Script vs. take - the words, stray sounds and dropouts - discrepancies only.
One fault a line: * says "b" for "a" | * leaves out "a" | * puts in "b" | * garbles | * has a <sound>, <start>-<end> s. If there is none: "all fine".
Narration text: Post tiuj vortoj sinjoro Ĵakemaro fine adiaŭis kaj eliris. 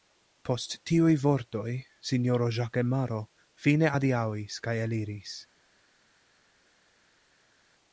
all fine